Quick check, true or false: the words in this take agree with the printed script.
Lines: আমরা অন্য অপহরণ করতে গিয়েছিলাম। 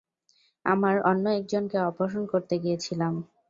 false